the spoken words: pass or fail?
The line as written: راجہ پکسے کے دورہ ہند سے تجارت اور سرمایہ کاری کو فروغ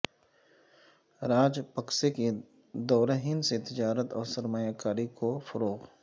pass